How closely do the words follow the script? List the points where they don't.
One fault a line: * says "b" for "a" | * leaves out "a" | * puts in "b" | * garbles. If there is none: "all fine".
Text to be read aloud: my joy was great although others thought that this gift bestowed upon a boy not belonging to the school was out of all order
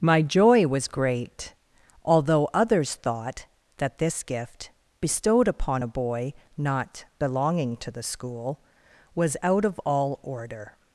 all fine